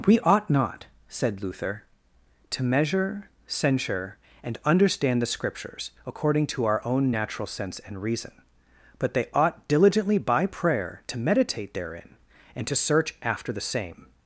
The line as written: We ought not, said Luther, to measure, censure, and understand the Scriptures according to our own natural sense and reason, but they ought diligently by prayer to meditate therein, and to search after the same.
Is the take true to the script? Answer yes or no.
yes